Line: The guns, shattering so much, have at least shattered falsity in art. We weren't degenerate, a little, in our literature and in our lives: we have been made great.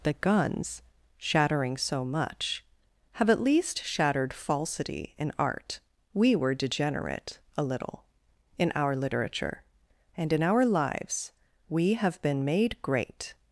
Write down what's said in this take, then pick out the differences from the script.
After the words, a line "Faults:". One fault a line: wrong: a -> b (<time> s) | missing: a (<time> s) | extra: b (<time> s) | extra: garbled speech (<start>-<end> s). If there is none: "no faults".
The guns, shattering so much, have at least shattered falsity in art. We were degenerate, a little, in our literature and in our lives: we have been made great.
Faults:
wrong: weren't -> were (6.4 s)